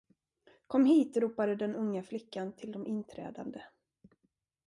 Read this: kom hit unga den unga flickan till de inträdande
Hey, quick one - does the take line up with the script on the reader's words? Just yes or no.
no